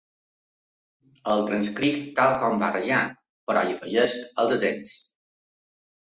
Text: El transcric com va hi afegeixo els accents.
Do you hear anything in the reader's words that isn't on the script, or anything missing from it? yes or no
yes